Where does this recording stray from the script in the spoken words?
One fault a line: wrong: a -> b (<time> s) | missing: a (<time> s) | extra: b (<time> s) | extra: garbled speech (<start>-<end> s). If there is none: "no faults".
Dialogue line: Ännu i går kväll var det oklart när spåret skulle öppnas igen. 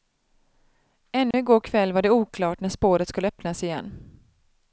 no faults